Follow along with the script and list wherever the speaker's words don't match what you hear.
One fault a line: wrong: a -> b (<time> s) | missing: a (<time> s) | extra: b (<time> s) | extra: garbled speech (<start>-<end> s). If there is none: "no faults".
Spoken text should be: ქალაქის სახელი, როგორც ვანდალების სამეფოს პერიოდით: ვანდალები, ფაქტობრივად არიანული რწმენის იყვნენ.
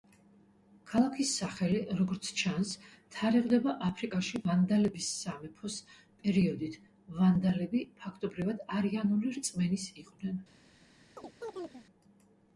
extra: ჩანს თარიღდება აფრიკაში (2.4 s)